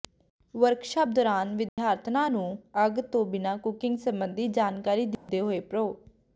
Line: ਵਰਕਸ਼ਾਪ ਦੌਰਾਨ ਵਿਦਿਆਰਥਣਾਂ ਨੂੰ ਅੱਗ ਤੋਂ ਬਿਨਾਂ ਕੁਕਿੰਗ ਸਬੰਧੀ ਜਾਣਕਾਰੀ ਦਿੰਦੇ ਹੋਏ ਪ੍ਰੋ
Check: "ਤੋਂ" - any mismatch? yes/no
no